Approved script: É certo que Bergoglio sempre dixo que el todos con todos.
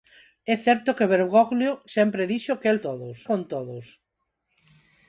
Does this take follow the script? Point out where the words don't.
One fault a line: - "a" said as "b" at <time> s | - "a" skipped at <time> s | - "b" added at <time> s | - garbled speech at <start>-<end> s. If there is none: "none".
none